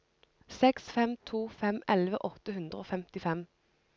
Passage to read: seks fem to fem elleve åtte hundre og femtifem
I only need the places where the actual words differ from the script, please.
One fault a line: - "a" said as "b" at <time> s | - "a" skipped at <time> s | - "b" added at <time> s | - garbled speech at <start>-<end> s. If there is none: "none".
none